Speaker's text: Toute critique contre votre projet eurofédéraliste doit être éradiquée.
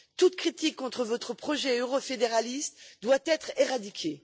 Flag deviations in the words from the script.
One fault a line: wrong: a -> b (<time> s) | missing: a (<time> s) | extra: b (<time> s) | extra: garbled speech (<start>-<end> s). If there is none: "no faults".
no faults